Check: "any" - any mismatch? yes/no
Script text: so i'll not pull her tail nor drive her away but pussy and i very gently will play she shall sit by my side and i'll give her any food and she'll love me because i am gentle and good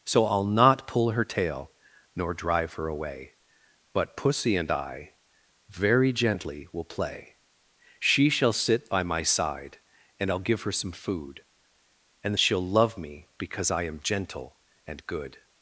yes